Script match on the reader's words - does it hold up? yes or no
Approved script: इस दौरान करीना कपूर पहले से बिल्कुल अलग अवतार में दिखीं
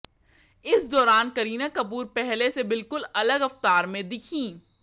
yes